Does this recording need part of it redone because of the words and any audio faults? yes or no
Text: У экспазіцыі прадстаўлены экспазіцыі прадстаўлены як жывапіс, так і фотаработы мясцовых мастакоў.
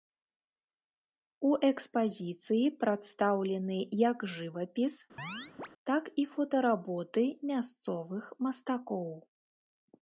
yes